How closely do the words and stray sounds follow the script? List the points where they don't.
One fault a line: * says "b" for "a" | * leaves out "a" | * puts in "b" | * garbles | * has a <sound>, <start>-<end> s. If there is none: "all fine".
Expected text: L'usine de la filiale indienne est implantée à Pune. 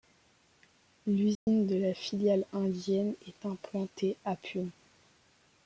* has a dropout, 1.3-1.5 s